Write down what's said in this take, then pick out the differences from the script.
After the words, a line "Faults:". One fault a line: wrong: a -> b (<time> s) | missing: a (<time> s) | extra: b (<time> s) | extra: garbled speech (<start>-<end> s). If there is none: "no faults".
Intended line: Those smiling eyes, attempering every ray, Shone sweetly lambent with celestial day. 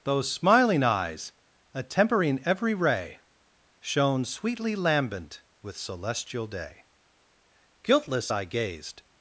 Those smiling eyes, attempering every ray, Shone sweetly lambent with celestial day. Guiltless I gazed
Faults:
extra: Guiltless I gazed (7.8 s)